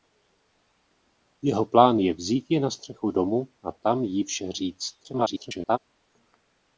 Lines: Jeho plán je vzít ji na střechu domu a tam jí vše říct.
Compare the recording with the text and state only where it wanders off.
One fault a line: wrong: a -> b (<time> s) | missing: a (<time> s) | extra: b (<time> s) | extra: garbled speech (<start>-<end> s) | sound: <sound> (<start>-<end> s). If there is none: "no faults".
extra: garbled speech (5.0-5.8 s)